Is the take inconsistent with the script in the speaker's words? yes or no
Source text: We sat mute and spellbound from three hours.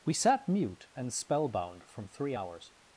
no